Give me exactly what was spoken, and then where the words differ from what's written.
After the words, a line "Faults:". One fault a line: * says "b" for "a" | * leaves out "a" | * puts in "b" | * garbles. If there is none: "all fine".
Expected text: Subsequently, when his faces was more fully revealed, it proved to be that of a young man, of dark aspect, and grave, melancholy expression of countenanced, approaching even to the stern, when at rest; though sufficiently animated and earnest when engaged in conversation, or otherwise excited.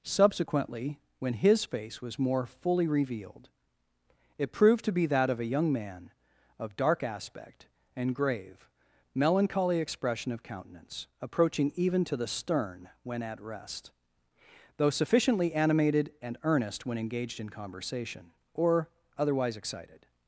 Subsequently, when his face was more fully revealed, it proved to be that of a young man, of dark aspect, and grave, melancholy expression of countenance, approaching even to the stern, when at rest; though sufficiently animated and earnest when engaged in conversation, or otherwise excited.
Faults:
* says "face" for "faces"
* says "countenance" for "countenanced"